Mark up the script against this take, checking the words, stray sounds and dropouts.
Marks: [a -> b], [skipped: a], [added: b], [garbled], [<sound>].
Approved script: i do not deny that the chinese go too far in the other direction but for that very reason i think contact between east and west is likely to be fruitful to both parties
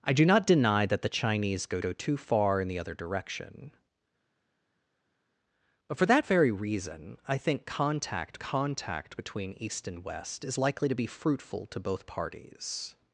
i do not deny that the chinese go [added: go] too far in the other direction but for that very reason i think contact [added: contact] between east and west is likely to be fruitful to both parties